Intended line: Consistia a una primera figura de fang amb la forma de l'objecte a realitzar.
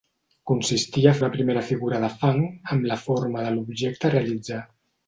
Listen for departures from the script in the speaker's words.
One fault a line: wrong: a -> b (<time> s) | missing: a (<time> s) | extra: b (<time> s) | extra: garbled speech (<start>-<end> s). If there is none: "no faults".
no faults